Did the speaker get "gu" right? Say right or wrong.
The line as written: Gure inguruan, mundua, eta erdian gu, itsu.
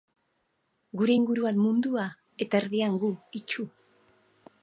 right